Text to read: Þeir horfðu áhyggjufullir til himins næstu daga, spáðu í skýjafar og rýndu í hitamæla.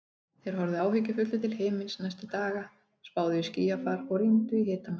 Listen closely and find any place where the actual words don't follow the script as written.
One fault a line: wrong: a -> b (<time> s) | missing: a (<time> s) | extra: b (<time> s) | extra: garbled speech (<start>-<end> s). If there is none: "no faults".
no faults